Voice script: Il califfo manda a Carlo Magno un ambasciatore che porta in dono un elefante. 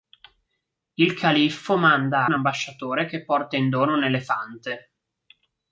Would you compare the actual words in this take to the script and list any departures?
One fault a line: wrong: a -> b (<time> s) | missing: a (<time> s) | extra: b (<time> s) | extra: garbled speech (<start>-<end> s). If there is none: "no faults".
missing: a Carlo Magno (2.2 s)